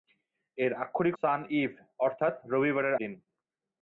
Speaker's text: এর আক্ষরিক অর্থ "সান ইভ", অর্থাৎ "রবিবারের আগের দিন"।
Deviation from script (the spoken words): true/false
true